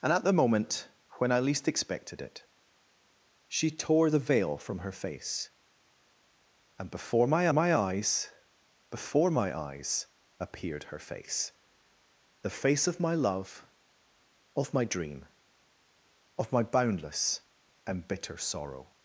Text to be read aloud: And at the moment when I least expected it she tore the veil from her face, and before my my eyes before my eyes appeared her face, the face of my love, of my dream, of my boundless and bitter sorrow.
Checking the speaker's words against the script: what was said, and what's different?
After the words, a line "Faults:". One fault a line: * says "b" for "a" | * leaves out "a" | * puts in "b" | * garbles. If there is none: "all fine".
And at the moment when I least expected it she tore the veil from her face, and before my my eyes before my eyes appeared her face, the face of my love, of my dream, of my boundless and bitter sorrow.
Faults:
all fine